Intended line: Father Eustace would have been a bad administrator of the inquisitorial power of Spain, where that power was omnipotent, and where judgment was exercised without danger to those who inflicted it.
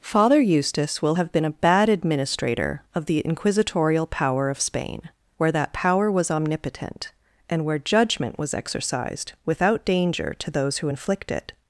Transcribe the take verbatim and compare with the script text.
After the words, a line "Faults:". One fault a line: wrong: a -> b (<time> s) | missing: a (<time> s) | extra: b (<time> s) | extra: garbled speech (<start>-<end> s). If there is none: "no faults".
Father Eustace will have been a bad administrator of the inquisitorial power of Spain, where that power was omnipotent, and where judgment was exercised without danger to those who inflict it.
Faults:
wrong: would -> will (1.0 s)
wrong: inflicted -> inflict (10.9 s)